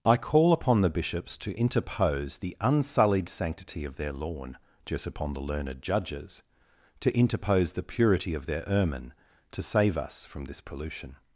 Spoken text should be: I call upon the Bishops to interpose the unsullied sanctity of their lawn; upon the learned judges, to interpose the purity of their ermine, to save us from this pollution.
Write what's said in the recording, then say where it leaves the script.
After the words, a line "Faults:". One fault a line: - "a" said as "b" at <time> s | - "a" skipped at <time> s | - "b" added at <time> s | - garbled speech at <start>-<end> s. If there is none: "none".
I call upon the Bishops to interpose the unsullied sanctity of their lawn; just upon the learned judges, to interpose the purity of their ermine, to save us from this pollution.
Faults:
- "just" added at 4.8 s